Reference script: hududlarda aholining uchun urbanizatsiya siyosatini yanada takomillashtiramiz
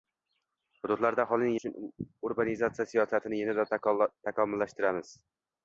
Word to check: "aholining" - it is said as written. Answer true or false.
true